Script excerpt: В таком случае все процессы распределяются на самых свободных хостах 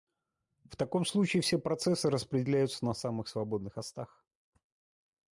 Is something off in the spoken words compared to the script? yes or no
no